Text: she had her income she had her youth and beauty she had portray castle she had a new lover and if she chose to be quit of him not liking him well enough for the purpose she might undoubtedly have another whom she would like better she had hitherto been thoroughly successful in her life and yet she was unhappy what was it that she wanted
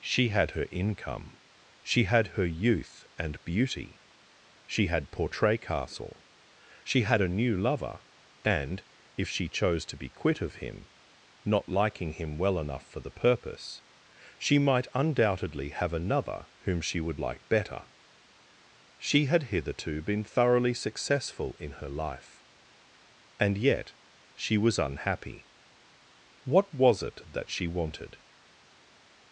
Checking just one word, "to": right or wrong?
right